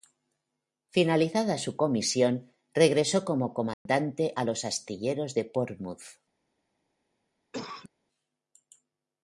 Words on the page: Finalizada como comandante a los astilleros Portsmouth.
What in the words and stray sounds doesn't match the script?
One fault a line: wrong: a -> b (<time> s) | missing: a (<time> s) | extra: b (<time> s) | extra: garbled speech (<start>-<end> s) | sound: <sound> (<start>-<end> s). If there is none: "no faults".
extra: su comisión regresó (1.6 s)
sound: dropout (3.7-3.9 s)
extra: de (5.3 s)
sound: cough (7.5-7.9 s)